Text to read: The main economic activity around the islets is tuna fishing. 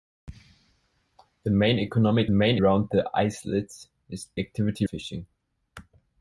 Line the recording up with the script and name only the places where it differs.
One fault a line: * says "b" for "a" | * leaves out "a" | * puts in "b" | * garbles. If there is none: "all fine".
* says "main" for "activity"
* says "activity" for "tuna"